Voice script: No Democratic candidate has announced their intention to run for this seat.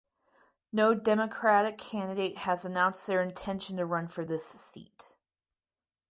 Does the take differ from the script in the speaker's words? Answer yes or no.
no